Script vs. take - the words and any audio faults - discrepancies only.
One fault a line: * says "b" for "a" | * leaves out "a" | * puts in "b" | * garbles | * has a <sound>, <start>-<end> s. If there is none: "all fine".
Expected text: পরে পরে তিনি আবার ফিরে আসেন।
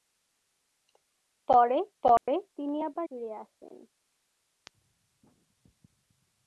* has a dropout, 2.2-2.3 s